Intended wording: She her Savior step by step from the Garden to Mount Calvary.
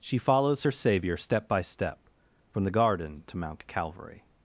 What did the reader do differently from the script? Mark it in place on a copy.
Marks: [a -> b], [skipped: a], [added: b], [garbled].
She [added: follows] her Savior step by step from the Garden to Mount Calvary.